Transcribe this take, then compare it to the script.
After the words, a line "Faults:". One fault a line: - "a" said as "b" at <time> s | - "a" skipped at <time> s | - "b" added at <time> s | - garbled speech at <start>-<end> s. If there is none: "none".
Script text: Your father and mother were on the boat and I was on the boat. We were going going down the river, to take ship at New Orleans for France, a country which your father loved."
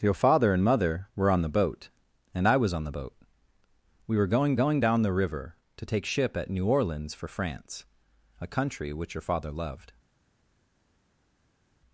Your father and mother were on the boat and I was on the boat. We were going going down the river, to take ship at New Orleans for France, a country which your father loved."
Faults:
none